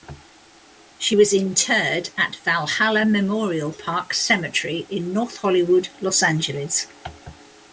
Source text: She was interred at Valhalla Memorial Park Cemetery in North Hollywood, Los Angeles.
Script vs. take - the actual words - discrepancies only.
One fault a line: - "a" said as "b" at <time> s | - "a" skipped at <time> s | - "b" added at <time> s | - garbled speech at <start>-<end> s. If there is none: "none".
none